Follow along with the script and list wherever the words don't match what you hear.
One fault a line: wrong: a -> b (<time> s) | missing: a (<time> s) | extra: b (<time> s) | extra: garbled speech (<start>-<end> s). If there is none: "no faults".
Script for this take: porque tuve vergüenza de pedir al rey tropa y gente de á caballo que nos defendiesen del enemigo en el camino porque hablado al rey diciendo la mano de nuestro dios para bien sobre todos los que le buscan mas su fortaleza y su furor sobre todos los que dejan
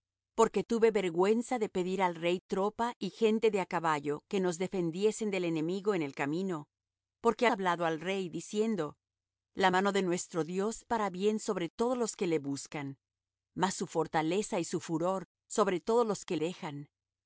no faults